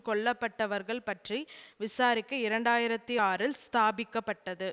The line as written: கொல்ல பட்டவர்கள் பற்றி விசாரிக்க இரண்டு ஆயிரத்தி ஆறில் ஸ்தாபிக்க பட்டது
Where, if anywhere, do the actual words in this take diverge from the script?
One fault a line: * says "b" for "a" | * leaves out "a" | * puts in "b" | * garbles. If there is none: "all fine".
all fine